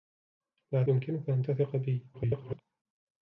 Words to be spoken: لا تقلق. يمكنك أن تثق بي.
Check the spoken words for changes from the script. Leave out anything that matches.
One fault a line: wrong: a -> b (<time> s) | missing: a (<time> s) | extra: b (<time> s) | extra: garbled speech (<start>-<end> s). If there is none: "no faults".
missing: تقلق (0.8 s)
extra: garbled speech (2.1-2.6 s)